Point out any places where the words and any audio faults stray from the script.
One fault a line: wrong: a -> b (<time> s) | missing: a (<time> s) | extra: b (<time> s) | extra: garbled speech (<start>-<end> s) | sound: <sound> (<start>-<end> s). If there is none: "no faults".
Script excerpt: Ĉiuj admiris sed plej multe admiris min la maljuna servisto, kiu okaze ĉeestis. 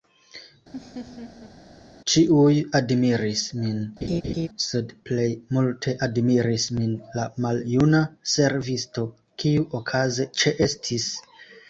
sound: laugh (0.7-1.5 s)
extra: min (3.6 s)
sound: laugh (4.0-4.5 s)